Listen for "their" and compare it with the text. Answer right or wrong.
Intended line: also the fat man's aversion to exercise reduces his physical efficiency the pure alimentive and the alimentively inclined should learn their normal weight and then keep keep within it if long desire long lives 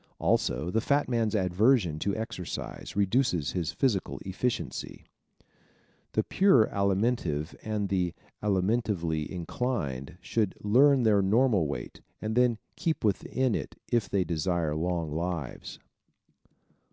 right